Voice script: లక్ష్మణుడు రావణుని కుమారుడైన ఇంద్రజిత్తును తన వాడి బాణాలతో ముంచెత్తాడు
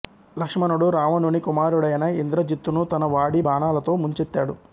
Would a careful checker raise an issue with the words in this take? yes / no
no